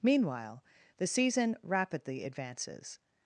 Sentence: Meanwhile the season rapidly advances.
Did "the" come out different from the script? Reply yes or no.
no